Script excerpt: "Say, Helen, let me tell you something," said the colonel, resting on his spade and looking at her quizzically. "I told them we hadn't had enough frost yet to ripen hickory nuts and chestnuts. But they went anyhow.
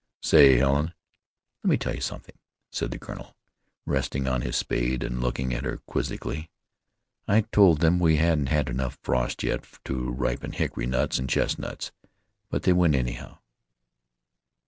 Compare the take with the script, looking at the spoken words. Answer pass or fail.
pass